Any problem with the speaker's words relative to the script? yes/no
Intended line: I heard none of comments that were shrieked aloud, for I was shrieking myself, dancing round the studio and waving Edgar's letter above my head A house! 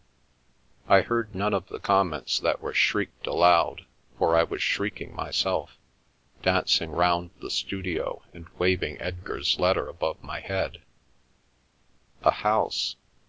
yes